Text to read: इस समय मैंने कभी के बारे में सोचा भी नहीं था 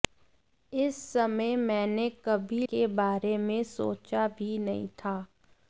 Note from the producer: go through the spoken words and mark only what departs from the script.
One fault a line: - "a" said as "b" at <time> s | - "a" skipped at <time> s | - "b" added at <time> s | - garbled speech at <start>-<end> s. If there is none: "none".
none